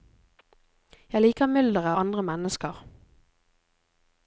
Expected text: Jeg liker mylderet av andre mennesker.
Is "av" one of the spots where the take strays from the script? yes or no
yes